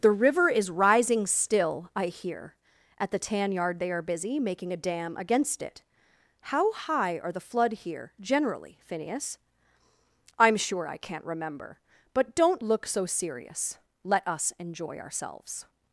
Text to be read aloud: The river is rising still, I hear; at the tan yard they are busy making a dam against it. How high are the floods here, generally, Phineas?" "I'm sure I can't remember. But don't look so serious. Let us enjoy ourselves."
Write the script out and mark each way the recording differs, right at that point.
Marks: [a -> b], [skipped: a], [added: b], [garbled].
The river is rising still, I hear; at the tan yard they are busy making a dam against it. How high are the [floods -> flood] here, generally, Phineas?" "I'm sure I can't remember. But don't look so serious. Let us enjoy ourselves."